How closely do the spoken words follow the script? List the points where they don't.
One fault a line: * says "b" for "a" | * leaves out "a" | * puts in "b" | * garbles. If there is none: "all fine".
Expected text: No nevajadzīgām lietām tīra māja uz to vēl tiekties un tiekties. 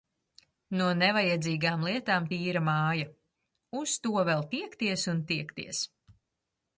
all fine